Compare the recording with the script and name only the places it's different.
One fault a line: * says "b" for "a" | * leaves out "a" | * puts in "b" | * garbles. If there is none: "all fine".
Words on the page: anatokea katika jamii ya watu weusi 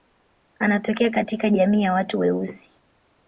all fine